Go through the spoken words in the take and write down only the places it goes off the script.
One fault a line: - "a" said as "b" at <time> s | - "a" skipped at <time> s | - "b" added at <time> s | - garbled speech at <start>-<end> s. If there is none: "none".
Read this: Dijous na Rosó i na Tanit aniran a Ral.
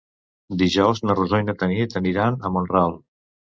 - "Mont" added at 2.6 s